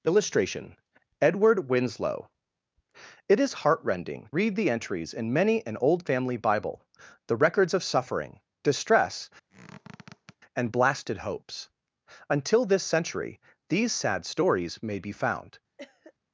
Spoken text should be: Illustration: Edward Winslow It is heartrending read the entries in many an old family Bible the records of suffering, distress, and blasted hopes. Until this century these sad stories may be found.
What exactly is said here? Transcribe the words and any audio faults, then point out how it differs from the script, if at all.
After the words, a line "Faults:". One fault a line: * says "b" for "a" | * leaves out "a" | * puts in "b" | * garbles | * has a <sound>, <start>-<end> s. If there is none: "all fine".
Illustration: Edward Winslow It is heartrending read the entries in many an old family Bible the records of suffering, distress, and blasted hopes. Until this century these sad stories may be found.
Faults:
* has a squeak, 9.5-10.4 s
* has a cough, 15.8-16.1 s